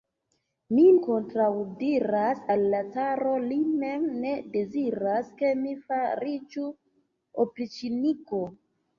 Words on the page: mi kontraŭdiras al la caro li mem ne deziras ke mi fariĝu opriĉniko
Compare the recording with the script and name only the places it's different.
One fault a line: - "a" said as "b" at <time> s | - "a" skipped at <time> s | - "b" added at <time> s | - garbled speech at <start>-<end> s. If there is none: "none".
none